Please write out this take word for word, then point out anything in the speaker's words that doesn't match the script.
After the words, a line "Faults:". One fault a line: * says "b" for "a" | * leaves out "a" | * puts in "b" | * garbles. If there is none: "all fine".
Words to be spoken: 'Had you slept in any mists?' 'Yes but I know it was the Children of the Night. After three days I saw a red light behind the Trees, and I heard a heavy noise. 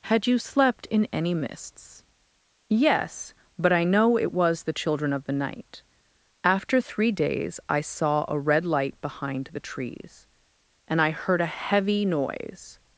'Had you slept in any mists?' 'Yes but I know it was the Children of the Night. After three days I saw a red light behind the Trees, and I heard a heavy noise.
Faults:
all fine